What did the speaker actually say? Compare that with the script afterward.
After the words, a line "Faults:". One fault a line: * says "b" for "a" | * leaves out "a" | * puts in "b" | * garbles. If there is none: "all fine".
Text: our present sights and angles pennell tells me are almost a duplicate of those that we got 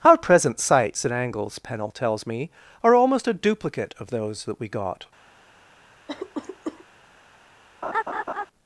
our present sights and angles pennell tells me are almost a duplicate of those that we got
Faults:
all fine